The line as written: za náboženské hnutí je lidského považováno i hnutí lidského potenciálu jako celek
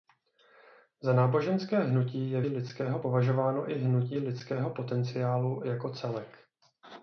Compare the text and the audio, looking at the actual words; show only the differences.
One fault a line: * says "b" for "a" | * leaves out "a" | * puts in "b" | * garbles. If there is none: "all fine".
all fine